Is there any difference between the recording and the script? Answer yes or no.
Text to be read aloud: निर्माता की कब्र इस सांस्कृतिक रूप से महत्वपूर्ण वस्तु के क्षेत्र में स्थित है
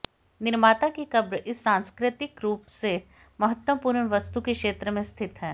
no